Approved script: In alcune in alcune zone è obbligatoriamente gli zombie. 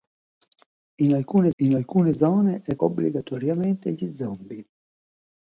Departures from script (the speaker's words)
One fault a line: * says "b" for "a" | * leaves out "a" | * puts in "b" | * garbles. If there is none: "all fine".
all fine